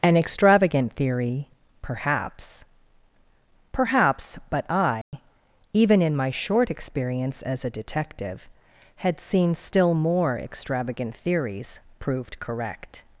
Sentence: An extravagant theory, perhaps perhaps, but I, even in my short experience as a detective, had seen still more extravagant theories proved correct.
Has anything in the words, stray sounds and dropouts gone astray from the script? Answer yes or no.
yes